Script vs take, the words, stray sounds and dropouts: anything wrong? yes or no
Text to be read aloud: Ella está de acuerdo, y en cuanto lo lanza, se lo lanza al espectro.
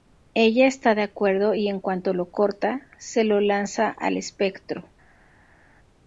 yes